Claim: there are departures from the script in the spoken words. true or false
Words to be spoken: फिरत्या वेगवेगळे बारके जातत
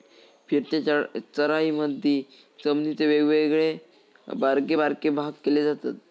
true